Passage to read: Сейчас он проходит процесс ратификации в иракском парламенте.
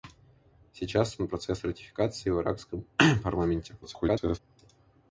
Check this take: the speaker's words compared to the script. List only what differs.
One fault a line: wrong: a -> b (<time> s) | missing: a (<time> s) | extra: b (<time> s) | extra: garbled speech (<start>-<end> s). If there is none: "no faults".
missing: проходит (1.3 s)
extra: garbled speech (3.8-4.4 s)